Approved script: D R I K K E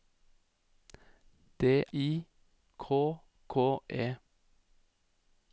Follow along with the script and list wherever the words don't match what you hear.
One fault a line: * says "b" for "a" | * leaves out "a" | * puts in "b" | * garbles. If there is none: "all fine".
* leaves out "R"